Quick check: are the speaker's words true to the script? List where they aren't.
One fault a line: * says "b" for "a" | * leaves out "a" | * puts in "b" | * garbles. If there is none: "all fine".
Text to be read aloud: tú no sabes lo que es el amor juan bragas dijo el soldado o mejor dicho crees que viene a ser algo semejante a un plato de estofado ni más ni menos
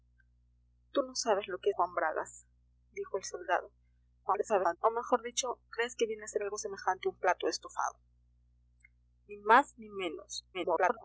* leaves out "es el amor"
* garbles
* garbles